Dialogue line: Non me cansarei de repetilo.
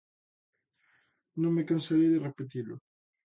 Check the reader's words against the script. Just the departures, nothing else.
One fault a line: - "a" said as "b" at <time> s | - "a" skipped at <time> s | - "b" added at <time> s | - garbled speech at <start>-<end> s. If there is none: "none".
none